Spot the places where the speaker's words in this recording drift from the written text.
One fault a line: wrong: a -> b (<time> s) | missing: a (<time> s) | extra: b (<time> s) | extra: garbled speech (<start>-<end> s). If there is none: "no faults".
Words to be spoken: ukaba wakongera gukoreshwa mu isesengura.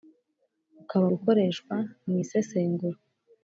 missing: wakongera (1.1 s)